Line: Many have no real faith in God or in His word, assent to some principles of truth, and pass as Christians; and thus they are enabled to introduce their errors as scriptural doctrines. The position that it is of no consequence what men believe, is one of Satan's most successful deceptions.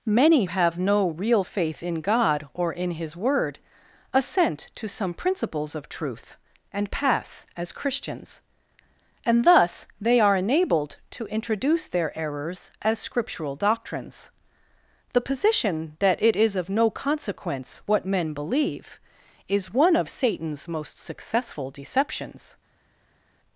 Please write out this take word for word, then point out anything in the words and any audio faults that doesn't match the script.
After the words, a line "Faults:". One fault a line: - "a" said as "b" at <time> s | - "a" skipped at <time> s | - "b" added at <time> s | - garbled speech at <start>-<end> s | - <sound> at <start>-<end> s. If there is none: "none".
Many have no real faith in God or in His word, assent to some principles of truth, and pass as Christians; and thus they are enabled to introduce their errors as scriptural doctrines. The position that it is of no consequence what men believe, is one of Satan's most successful deceptions.
Faults:
none